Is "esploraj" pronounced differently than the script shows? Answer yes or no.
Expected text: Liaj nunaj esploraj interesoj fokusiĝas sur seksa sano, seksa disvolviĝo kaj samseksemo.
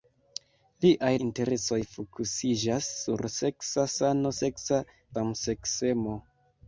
yes